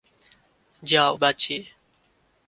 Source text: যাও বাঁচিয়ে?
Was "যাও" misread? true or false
false